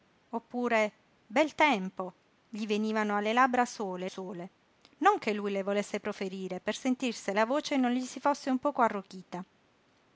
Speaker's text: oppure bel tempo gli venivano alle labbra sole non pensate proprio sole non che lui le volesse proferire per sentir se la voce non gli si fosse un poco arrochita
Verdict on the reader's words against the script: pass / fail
fail